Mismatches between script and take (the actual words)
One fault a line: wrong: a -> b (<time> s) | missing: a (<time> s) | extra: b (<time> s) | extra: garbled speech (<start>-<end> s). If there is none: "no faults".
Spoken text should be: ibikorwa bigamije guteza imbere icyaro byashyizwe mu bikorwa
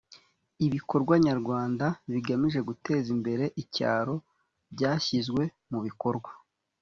extra: nyarwanda (1.2 s)